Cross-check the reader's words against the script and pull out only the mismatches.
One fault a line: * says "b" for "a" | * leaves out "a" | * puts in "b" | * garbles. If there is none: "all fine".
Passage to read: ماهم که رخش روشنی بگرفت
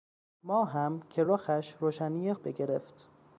all fine